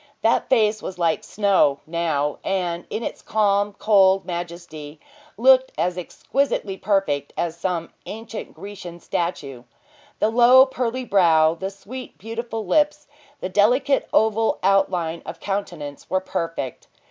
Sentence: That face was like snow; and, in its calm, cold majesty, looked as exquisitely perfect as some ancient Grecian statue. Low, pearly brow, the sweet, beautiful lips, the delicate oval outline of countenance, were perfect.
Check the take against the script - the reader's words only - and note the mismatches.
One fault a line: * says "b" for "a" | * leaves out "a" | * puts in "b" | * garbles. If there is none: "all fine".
* puts in "now"
* puts in "The"